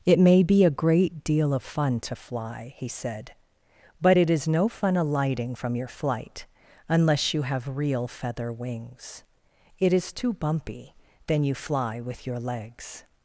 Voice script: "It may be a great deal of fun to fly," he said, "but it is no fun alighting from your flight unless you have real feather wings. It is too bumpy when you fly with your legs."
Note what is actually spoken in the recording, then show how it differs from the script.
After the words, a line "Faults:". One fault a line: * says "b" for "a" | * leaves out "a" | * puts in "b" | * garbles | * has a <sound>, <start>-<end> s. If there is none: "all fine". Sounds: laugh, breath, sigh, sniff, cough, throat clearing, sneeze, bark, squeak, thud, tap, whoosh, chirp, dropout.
"It may be a great deal of fun to fly," he said, "but it is no fun alighting from your flight unless you have real feather wings. It is too bumpy then you fly with your legs."
Faults:
* says "then" for "when"